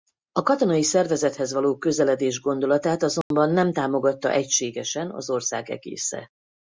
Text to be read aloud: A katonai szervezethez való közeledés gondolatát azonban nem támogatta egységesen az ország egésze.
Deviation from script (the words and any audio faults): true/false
true